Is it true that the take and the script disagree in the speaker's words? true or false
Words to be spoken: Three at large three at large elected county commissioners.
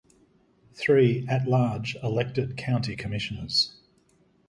true